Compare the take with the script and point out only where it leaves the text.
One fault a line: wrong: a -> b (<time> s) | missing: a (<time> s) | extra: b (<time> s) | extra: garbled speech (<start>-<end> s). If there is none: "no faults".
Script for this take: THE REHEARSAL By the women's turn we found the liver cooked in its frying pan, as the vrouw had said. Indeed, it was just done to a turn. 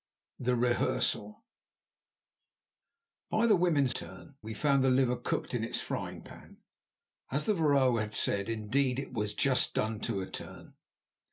no faults